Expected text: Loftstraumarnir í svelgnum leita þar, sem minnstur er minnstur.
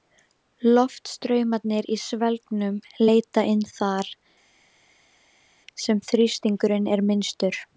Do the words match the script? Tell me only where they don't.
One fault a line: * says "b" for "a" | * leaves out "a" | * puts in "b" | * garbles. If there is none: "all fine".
* puts in "inn"
* says "þrýstingurinn" for "minnstur"